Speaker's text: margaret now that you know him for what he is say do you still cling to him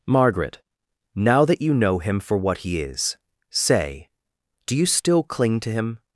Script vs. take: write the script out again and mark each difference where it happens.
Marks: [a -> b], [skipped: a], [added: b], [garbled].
margaret now that you know him for what he is say do you still cling to him